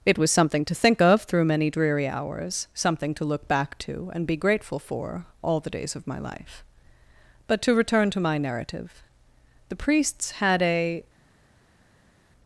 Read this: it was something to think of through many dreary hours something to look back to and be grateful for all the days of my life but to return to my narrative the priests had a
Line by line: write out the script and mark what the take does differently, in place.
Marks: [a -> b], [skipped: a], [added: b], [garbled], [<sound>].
it was something to think of through many dreary hours something to look back to and be grateful for all the days of my life but to return to my narrative the priests had a